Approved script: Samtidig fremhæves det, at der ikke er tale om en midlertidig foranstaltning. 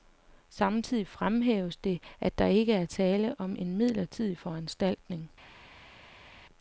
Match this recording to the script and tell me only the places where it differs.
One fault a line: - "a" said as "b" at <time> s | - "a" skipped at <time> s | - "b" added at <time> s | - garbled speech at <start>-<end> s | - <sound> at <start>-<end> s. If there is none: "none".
none